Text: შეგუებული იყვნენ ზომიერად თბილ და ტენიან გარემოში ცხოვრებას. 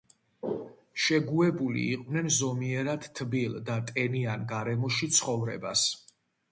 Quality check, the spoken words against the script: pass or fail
pass